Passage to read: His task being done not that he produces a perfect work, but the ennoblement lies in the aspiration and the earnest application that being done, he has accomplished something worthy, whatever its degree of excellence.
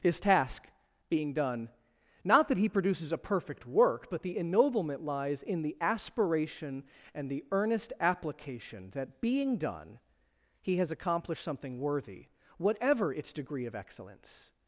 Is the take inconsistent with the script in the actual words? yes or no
no